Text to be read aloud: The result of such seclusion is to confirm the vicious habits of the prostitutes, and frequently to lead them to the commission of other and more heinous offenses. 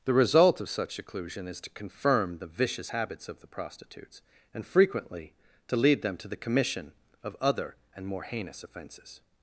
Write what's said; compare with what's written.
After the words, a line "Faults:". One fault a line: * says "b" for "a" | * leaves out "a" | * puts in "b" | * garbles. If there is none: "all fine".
The result of such seclusion is to confirm the vicious habits of the prostitutes, and frequently to lead them to the commission of other and more heinous offenses.
Faults:
all fine